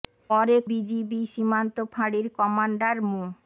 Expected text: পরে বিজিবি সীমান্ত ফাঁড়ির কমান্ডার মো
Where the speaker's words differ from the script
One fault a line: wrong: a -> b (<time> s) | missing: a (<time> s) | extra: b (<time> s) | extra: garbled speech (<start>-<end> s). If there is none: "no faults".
no faults